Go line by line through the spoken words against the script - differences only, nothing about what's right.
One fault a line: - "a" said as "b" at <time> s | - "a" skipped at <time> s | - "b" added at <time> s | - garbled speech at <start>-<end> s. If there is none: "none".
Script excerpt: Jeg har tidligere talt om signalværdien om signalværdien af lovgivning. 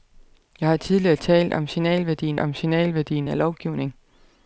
none